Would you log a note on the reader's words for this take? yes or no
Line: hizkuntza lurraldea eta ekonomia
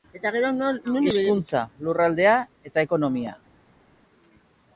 no